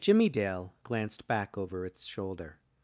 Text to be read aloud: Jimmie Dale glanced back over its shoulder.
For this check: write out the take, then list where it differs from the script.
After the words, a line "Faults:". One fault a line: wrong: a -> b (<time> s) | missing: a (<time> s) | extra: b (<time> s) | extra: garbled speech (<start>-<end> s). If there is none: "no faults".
Jimmie Dale glanced back over its shoulder.
Faults:
no faults